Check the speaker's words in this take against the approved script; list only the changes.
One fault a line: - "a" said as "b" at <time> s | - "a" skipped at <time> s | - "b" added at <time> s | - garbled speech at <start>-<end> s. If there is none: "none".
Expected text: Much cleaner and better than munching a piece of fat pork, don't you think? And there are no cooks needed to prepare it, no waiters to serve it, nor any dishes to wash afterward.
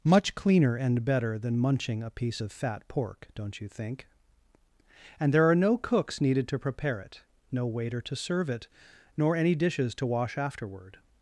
- "waiters" said as "waiter" at 7.7 s